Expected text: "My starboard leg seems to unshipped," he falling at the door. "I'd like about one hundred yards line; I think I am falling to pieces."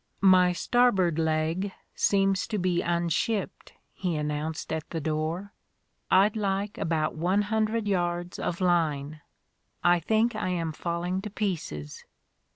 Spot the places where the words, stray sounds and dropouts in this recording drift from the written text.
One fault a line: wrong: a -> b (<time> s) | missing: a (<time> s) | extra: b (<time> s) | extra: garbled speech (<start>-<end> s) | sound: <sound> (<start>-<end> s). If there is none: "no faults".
extra: be (2.6 s)
wrong: falling -> announced (4.1 s)
extra: of (8.4 s)